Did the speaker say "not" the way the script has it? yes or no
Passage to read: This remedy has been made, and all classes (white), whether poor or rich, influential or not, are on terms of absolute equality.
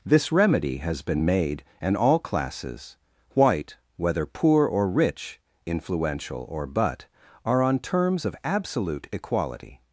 no